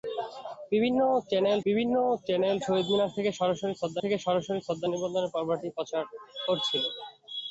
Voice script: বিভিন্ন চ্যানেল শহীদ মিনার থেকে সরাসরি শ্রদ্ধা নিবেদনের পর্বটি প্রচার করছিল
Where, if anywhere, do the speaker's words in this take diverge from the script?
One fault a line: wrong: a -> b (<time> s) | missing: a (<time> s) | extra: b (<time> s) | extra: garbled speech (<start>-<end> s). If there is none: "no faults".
extra: বিভিন্ন চ্যানেল (1.6 s)
extra: থেকে সরাসরি শ্রদ্ধা (4.0 s)